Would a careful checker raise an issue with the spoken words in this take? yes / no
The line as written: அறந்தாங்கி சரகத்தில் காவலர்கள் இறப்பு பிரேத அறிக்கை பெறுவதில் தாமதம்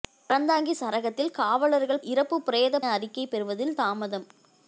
no